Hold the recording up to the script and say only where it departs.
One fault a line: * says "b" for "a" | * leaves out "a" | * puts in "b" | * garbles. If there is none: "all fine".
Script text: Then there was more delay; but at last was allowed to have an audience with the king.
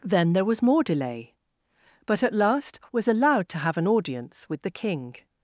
all fine